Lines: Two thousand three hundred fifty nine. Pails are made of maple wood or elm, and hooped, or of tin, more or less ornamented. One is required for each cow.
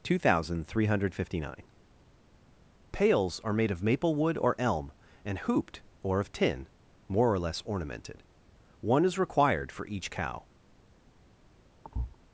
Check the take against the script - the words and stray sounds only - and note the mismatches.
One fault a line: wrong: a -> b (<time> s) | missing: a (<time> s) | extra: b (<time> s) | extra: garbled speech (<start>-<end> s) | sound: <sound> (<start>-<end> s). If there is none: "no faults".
sound: thud (11.8-12.2 s)